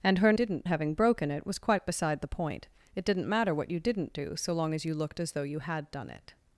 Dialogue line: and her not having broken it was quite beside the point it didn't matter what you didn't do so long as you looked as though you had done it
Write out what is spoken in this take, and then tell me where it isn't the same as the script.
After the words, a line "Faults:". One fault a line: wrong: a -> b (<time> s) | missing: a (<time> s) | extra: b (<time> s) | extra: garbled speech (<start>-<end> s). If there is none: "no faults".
and her didn't having broken it was quite beside the point it didn't matter what you didn't do so long as you looked as though you had done it
Faults:
wrong: not -> didn't (0.3 s)